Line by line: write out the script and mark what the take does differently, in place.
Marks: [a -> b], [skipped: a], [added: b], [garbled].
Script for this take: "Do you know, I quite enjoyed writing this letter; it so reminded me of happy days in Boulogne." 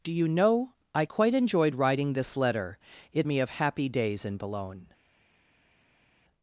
"Do you know, I quite enjoyed writing this letter; it [skipped: so reminded] me of happy days in Boulogne."